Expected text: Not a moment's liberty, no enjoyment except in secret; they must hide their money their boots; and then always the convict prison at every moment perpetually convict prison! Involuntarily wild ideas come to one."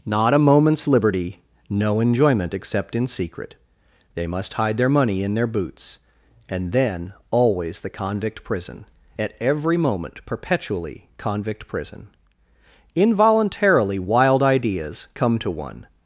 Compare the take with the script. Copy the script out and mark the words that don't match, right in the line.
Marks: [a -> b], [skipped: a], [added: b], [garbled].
Not a moment's liberty, no enjoyment except in secret; they must hide their money [added: in] their boots; and then always the convict prison at every moment perpetually convict prison! Involuntarily wild ideas come to one."